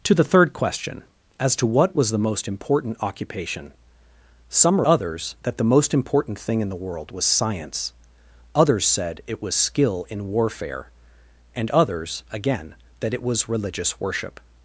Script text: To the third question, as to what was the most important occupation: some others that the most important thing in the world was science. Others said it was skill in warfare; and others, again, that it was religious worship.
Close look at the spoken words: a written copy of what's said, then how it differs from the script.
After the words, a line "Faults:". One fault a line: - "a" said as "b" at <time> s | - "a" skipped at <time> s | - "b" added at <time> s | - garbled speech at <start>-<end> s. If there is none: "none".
To the third question, as to what was the most important occupation: some others that the most important thing in the world was science. Others said it was skill in warfare; and others, again, that it was religious worship.
Faults:
none